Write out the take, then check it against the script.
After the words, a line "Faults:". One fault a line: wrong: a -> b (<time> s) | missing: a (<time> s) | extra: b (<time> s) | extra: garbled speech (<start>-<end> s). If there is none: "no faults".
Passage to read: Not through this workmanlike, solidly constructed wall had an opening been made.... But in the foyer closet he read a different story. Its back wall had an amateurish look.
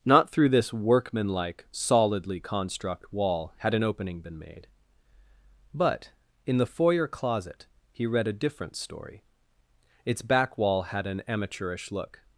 Not through this workmanlike, solidly construct wall had an opening been made.... But in the foyer closet he read a different story. Its back wall had an amateurish look.
Faults:
wrong: constructed -> construct (2.4 s)